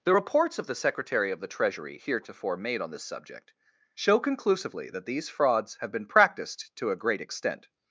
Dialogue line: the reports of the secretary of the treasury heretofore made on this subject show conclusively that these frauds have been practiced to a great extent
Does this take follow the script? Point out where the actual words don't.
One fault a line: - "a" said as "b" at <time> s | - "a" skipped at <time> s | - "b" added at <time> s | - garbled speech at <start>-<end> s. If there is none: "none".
none